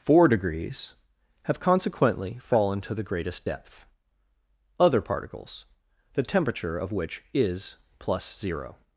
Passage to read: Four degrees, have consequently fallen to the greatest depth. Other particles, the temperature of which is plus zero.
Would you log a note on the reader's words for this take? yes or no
no